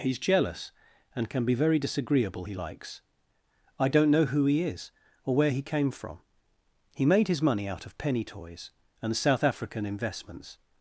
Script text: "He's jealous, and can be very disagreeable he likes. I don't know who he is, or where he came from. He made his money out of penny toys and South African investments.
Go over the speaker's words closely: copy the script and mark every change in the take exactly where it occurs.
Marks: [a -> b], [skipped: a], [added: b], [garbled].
"He's jealous, and can be very disagreeable he likes. I don't know who he is, or where he came from. He made his money out of penny toys and South African investments.